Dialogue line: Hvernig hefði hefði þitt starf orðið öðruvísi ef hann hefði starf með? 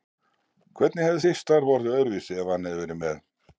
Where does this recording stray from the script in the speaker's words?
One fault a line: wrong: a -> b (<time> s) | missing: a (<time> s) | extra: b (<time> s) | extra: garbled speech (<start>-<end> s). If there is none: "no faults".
missing: hefði (1.2 s)
wrong: starf -> verið (2.8 s)